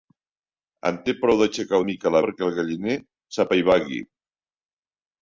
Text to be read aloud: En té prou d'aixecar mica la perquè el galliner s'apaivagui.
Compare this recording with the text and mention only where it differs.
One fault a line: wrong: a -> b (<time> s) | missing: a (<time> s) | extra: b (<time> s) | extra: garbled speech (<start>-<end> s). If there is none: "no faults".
no faults